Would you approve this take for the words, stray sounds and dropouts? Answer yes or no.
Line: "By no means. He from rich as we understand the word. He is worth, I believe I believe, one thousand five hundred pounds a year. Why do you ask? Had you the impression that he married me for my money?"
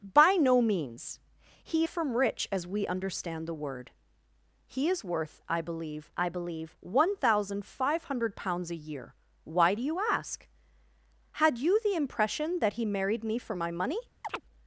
no